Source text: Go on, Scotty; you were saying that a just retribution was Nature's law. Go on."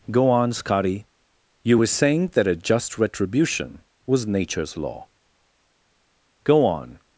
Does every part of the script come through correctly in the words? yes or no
yes